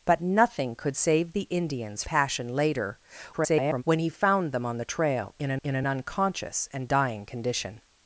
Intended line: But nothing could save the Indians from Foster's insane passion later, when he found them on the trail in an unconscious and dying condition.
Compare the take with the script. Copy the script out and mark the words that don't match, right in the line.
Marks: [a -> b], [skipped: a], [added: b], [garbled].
But nothing could save the Indians [skipped: from Foster's insane] passion later, [garbled] when he found them on the trail in an [added: in an] unconscious and dying condition.